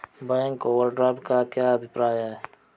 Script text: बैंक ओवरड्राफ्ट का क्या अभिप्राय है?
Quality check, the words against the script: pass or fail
pass